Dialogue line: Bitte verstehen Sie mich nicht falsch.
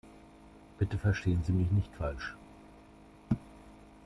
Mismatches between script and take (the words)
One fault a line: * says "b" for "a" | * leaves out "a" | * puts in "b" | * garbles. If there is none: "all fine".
all fine